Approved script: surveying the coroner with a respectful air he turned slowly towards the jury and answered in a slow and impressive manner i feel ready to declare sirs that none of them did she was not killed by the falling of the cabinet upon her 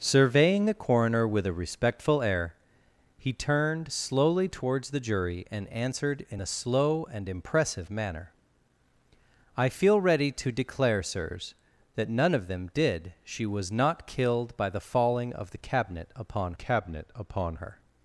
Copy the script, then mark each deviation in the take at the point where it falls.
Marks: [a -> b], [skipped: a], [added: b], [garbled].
surveying the coroner with a respectful air he turned slowly towards the jury and answered in a slow and impressive manner i feel ready to declare sirs that none of them did she was not killed by the falling of the cabinet upon [added: cabinet upon] her